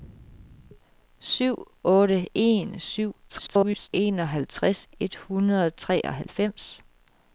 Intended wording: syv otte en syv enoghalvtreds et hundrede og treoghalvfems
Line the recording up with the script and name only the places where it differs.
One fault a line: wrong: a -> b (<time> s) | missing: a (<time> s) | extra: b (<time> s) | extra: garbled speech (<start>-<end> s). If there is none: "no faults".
extra: garbled speech (3.3-3.9 s)